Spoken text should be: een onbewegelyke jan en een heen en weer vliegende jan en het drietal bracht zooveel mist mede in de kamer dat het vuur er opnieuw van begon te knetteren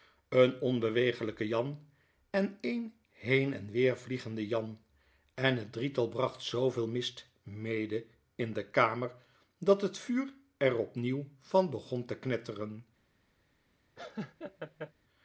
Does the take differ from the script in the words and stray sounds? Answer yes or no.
yes